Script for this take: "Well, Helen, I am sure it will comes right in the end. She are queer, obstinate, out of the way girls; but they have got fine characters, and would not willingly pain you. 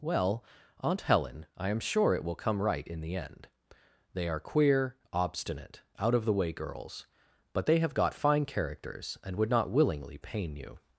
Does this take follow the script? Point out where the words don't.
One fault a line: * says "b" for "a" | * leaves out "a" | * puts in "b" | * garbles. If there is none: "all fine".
* puts in "Aunt"
* says "come" for "comes"
* says "They" for "She"